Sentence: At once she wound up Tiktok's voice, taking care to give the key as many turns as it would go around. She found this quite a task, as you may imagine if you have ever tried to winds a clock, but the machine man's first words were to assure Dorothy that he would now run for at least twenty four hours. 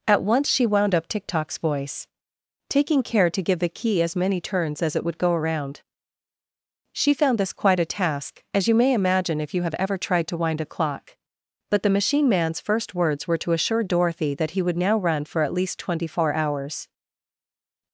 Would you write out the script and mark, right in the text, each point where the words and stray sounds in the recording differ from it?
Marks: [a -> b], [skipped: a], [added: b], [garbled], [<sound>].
At once she wound up Tiktok's voice, taking care to give the key as many turns as it would go around. She found this quite a task, as you may imagine if you have ever tried to [winds -> wind] a clock, but the machine man's first words were to assure Dorothy that he would now run for at least twenty four hours.